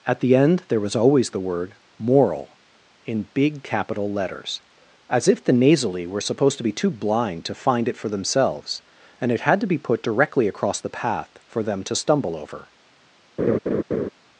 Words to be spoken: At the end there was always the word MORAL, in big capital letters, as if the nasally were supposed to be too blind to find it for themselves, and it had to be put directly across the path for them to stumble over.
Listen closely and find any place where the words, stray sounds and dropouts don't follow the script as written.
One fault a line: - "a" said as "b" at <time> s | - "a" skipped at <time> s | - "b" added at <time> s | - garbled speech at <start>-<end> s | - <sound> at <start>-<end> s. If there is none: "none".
- laugh at 13.4-14.1 s